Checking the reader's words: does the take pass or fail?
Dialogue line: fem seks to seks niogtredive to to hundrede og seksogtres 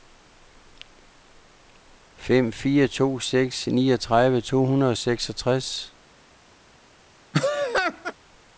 fail